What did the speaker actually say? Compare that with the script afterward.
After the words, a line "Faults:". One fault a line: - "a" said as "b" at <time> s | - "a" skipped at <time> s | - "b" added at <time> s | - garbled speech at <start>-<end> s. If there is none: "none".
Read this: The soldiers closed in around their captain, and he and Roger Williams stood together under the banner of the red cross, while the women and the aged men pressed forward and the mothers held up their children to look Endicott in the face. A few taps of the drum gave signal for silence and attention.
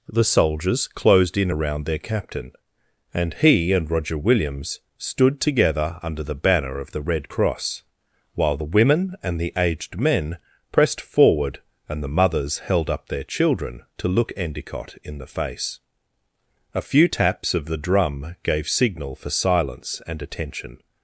The soldiers closed in around their captain, and he and Roger Williams stood together under the banner of the red cross, while the women and the aged men pressed forward and the mothers held up their children to look Endicott in the face. A few taps of the drum gave signal for silence and attention.
Faults:
none